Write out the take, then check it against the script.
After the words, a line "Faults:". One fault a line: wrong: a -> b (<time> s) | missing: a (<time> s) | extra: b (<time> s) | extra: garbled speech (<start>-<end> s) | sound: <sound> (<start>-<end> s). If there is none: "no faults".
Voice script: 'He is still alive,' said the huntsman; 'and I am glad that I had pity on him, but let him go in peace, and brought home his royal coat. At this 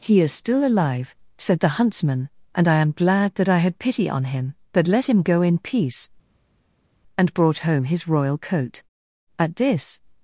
'He is still alive,' said the huntsman; 'and I am glad that I had pity on him, but let him go in peace, and brought home his royal coat. At this
Faults:
no faults